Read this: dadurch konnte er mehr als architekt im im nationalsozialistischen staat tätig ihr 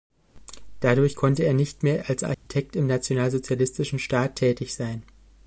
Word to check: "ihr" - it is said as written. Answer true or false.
false